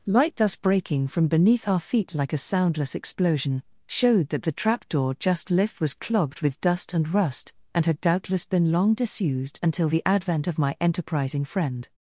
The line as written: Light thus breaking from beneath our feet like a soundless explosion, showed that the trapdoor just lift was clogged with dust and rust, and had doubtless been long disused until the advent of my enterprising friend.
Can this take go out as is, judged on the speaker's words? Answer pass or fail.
pass